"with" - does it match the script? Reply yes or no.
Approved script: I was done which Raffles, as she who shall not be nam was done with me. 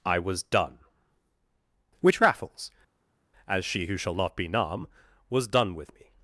yes